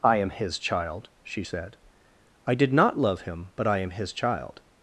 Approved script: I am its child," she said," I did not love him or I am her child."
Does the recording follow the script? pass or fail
fail